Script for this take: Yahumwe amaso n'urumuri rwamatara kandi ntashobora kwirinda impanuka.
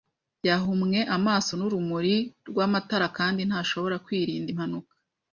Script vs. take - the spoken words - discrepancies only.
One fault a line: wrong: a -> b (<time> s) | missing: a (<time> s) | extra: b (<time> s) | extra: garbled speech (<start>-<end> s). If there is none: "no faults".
no faults